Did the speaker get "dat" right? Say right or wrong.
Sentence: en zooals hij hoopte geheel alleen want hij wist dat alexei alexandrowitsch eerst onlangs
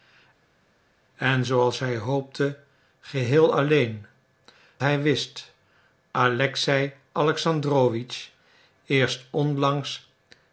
wrong